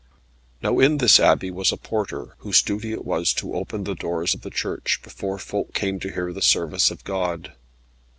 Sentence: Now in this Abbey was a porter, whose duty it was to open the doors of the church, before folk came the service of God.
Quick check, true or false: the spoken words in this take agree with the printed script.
false